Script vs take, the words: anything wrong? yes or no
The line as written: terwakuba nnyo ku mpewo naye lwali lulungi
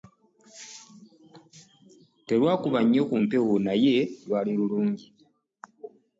no